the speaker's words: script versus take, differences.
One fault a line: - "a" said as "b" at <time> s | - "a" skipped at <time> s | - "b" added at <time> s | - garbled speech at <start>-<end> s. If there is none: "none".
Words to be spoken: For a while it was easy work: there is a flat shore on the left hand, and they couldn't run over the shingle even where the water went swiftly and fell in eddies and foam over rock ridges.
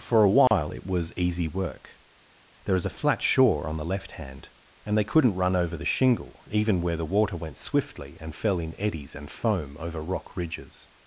none